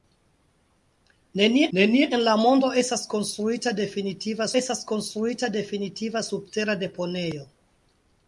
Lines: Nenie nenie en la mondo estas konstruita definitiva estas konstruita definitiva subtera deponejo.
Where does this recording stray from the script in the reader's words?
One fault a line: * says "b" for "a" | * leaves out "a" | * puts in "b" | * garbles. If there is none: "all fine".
all fine